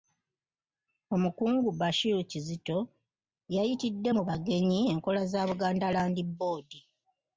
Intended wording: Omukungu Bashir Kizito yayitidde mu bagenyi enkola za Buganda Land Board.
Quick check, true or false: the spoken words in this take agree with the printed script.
true